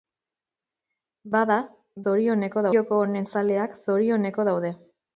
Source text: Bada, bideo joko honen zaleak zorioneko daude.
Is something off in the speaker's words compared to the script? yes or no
yes